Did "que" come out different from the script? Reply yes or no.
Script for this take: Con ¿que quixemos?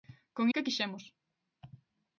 no